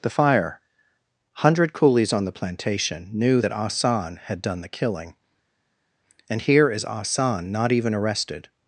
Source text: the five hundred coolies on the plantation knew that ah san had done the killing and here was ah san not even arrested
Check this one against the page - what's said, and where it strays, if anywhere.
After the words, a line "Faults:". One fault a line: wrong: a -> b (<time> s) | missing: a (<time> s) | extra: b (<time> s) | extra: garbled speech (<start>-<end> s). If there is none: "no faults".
the fire hundred coolies on the plantation knew that ah san had done the killing and here is ah san not even arrested
Faults:
wrong: five -> fire (0.1 s)
wrong: was -> is (6.7 s)